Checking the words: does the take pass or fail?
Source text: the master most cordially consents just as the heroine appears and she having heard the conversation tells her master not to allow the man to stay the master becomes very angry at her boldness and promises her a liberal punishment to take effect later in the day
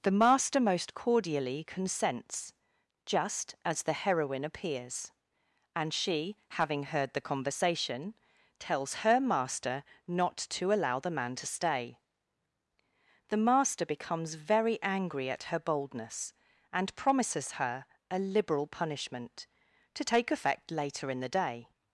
pass